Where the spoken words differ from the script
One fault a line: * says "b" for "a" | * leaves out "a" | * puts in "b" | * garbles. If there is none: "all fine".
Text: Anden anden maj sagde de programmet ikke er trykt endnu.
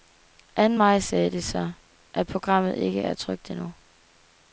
* leaves out "anden"
* puts in "så at"